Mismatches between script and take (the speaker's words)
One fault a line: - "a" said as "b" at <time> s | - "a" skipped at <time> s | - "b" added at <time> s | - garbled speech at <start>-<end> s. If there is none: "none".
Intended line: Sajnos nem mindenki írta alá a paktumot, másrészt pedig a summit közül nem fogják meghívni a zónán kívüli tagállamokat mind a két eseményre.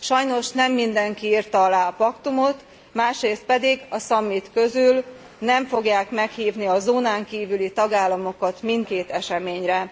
- "a" skipped at 8.9 s